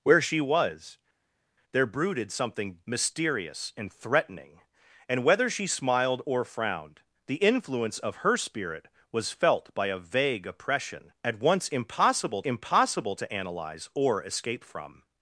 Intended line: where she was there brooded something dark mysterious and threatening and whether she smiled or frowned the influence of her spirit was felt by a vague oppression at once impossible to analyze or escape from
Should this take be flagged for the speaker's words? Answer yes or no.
yes